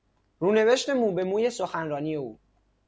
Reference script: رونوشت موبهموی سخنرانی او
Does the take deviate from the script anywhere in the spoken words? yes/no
no